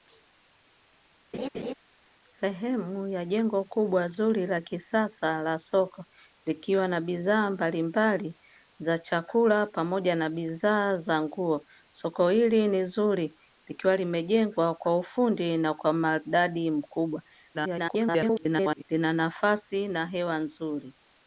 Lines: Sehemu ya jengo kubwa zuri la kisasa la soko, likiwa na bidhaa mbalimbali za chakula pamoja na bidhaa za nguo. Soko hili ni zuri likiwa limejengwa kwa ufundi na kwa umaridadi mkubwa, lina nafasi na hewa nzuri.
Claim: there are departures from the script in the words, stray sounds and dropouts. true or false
true